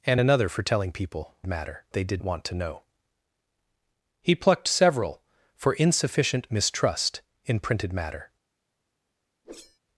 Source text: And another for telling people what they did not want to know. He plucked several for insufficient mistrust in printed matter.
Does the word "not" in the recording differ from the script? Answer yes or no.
yes